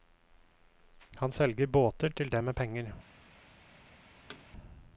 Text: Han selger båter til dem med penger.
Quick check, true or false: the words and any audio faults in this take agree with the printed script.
false